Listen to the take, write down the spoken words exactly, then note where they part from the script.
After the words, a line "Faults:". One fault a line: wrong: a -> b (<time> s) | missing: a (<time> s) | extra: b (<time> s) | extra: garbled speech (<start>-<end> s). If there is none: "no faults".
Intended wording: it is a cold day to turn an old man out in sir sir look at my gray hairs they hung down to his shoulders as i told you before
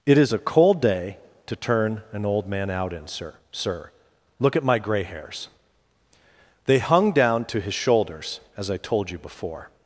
it is a cold day to turn an old man out in sir sir look at my gray hairs they hung down to his shoulders as i told you before
Faults:
no faults